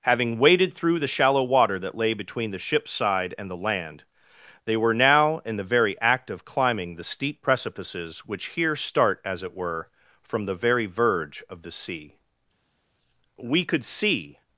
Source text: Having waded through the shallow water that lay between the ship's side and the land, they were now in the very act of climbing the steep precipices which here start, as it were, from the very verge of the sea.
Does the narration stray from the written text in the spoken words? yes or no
yes